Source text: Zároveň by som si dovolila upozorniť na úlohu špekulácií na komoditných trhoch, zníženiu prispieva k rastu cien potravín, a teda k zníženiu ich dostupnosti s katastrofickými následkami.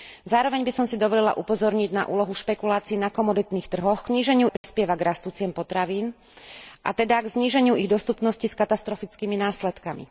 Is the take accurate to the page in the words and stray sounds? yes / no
no